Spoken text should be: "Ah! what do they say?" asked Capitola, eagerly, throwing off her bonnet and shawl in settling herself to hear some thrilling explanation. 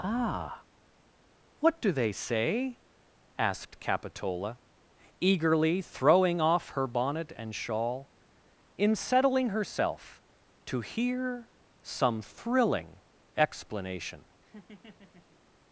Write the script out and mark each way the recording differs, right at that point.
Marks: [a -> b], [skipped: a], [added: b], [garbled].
"Ah! what do they say?" asked Capitola, eagerly, throwing off her bonnet and shawl in settling herself to hear some thrilling explanation.